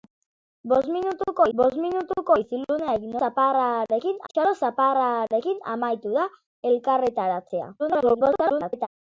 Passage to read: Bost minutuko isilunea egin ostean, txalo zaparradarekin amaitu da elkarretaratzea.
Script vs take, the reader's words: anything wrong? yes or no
yes